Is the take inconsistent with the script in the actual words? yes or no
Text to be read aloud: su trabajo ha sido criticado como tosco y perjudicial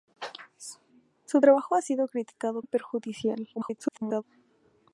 yes